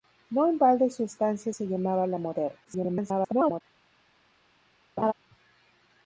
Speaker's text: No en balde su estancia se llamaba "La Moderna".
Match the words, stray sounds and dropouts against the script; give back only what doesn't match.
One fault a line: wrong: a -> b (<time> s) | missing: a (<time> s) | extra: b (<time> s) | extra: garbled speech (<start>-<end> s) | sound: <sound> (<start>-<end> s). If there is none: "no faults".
extra: garbled speech (2.6-3.6 s)
sound: laugh (5.0-5.1 s)